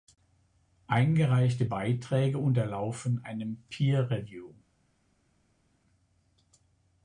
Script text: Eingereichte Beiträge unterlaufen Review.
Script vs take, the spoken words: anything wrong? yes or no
yes